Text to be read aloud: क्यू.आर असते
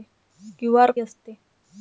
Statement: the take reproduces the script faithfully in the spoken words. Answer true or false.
true